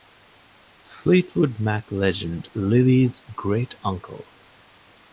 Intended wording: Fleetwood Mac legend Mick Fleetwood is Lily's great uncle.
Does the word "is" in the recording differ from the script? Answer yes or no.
yes